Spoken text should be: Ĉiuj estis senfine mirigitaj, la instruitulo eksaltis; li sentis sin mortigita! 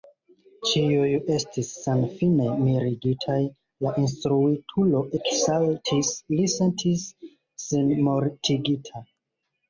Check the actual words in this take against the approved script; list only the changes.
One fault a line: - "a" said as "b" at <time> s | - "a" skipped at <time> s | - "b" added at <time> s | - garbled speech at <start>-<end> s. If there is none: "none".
none